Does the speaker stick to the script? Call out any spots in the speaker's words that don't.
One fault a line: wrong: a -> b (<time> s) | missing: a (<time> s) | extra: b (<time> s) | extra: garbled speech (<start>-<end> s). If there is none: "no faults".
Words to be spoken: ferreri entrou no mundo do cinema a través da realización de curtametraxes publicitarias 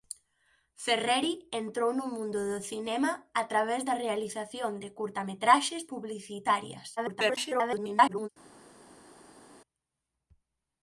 extra: garbled speech (7.0-8.3 s)